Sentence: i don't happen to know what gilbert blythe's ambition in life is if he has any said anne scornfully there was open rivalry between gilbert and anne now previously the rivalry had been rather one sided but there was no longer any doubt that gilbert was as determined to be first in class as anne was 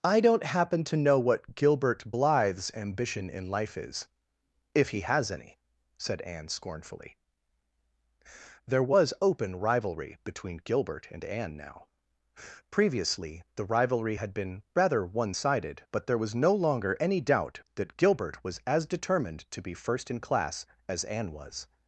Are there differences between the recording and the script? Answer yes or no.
no